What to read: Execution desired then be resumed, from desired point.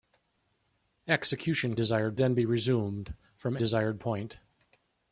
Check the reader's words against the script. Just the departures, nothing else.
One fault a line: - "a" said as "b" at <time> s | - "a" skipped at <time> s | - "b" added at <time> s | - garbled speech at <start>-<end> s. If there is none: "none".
none